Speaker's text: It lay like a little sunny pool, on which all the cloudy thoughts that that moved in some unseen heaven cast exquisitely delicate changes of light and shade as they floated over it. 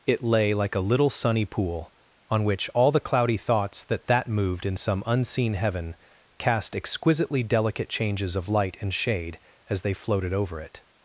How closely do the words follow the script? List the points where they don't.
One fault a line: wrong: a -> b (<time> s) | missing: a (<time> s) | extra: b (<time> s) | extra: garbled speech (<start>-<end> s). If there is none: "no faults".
no faults